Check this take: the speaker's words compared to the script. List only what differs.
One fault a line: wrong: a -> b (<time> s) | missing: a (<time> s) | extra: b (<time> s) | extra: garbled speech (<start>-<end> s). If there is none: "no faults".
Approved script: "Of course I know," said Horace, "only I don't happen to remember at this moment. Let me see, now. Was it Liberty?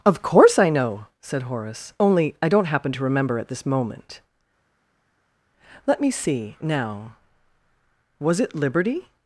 no faults